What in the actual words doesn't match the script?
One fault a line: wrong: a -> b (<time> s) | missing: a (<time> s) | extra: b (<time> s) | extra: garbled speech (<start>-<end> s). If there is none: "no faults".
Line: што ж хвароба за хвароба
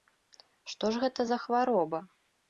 wrong: хвароба -> гэта (1.0 s)